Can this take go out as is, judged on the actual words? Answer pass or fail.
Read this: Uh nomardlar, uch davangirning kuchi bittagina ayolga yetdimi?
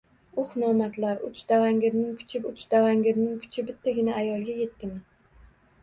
fail